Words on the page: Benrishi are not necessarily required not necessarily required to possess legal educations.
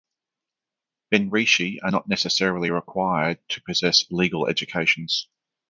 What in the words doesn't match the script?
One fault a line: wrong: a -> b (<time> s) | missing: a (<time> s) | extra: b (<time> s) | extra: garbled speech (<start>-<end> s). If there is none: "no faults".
missing: not necessarily required (3.4 s)